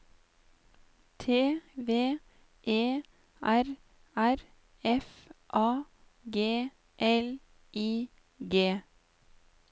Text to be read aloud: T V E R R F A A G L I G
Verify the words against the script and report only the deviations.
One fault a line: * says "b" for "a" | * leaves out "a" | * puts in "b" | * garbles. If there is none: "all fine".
* leaves out "A"